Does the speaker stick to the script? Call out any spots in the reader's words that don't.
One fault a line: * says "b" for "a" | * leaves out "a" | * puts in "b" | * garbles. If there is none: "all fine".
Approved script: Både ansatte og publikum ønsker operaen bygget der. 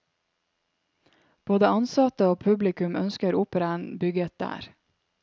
all fine